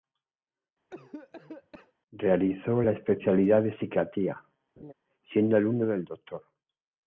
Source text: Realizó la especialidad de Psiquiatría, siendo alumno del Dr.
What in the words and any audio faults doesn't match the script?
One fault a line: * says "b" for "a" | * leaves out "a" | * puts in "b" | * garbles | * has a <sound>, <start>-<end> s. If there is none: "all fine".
* has a cough, 0.9-1.9 s
* has a laugh, 4.8-4.9 s